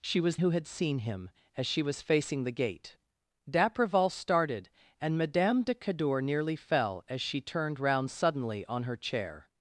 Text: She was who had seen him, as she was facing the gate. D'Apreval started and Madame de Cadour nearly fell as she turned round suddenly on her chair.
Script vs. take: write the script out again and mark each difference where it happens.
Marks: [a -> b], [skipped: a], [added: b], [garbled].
She was who had seen him, as she was facing the gate. D'Apreval started and Madame de Cadour nearly fell as she turned round suddenly on her chair.